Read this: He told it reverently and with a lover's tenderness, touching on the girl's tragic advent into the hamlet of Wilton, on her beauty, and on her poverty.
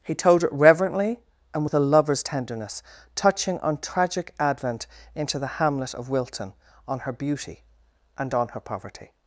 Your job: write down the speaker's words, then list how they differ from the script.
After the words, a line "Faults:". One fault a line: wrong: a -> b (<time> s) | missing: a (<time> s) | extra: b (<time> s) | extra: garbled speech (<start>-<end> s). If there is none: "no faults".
He told it reverently and with a lover's tenderness, touching on tragic advent into the hamlet of Wilton, on her beauty, and on her poverty.
Faults:
missing: the girl's (3.8 s)